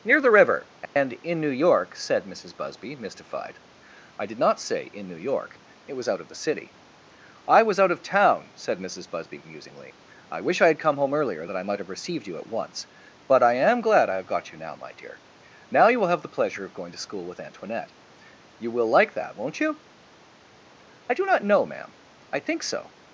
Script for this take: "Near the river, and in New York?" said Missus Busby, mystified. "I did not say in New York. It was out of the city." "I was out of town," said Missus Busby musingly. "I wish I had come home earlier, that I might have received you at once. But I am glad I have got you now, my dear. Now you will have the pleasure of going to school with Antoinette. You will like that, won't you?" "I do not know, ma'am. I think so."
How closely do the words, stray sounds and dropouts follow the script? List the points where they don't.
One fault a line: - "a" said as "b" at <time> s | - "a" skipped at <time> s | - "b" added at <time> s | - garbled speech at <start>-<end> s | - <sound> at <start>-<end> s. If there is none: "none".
- dropout at 0.9-1.0 s